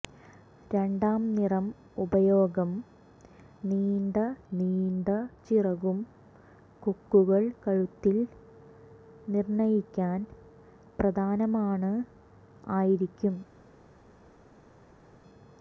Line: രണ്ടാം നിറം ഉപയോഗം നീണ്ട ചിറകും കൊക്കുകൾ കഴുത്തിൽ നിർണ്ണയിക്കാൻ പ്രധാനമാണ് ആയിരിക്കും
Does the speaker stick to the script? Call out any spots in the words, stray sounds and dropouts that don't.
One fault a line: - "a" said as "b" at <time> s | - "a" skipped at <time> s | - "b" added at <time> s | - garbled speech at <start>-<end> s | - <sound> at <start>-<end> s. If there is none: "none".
- "നീണ്ട" added at 4.5 s